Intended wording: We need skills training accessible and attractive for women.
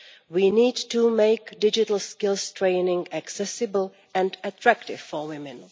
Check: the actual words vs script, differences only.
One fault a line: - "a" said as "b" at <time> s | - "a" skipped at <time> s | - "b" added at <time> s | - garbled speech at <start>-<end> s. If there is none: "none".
- "to make digital" added at 0.9 s